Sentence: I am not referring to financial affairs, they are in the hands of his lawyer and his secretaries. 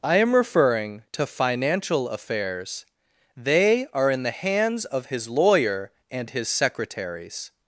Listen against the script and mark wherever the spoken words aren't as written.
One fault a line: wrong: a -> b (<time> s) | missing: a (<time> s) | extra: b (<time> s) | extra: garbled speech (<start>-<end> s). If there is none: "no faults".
missing: not (0.3 s)